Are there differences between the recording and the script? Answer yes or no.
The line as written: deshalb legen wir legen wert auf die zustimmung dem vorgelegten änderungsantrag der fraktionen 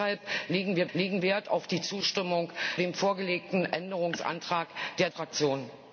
no